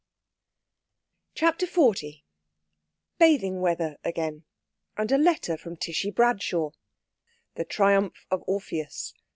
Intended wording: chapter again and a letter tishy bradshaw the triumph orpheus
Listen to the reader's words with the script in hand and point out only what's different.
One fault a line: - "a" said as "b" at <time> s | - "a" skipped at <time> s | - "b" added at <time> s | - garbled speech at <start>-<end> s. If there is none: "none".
- "xl bathing weather" added at 1.7 s
- "from" added at 5.6 s
- "of" added at 8.3 s